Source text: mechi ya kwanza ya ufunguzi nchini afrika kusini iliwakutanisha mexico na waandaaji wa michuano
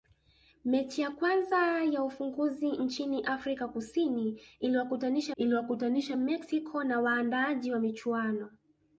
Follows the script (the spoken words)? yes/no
no